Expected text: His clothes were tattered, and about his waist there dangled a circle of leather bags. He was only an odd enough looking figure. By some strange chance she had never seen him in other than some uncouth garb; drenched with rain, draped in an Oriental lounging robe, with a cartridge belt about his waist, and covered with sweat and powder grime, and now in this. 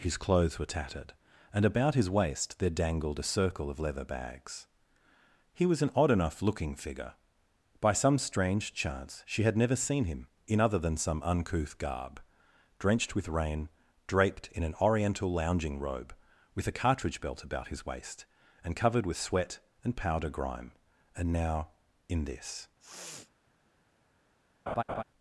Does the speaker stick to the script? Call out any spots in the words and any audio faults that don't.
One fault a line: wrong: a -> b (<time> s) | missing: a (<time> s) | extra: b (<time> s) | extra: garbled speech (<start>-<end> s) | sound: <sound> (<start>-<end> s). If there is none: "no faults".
missing: only (5.8 s)
sound: sniff (22.8-23.3 s)
sound: laugh (24.7-25.0 s)